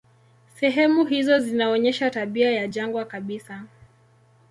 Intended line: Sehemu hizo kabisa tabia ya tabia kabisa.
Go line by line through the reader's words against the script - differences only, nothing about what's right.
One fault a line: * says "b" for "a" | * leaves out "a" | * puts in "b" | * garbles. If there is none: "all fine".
* says "zinaonyesha" for "kabisa"
* says "jangwa" for "tabia"